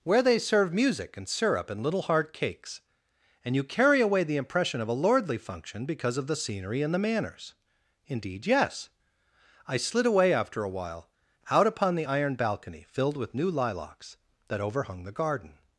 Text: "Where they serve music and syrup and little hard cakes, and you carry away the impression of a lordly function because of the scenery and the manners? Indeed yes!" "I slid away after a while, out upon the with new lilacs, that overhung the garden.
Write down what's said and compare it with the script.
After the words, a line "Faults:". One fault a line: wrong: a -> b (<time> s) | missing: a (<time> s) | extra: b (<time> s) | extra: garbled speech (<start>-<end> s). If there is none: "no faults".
"Where they serve music and syrup and little hard cakes, and you carry away the impression of a lordly function because of the scenery and the manners? Indeed yes!" "I slid away after a while, out upon the iron balcony, filled with new lilacs, that overhung the garden.
Faults:
extra: iron balcony filled (12.1 s)